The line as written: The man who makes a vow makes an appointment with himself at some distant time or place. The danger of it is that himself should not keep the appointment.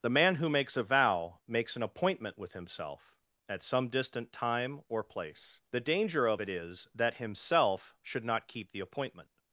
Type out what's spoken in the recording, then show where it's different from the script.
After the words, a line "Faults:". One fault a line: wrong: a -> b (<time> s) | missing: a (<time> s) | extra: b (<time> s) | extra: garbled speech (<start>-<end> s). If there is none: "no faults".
The man who makes a vow makes an appointment with himself at some distant time or place. The danger of it is that himself should not keep the appointment.
Faults:
no faults